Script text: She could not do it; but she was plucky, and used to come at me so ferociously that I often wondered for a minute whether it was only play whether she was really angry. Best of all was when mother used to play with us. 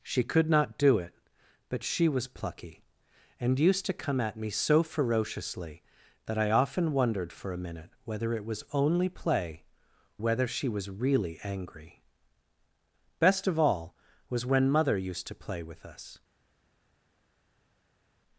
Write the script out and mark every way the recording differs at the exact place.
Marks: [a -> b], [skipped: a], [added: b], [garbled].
She could not do it; but she was plucky, and used to come at me so ferociously that I often wondered for a minute whether it was only play whether she was really angry. Best of all was when mother used to play with us.